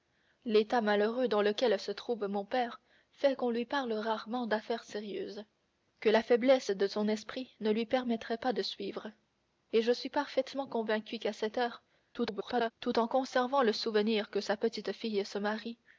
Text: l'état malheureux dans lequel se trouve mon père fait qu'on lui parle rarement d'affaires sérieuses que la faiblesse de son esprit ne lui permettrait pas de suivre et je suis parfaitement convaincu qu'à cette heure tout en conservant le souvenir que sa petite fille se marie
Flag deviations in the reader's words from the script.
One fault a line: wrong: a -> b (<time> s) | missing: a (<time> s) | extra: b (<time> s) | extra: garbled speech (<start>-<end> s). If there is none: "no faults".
extra: garbled speech (12.1-12.7 s)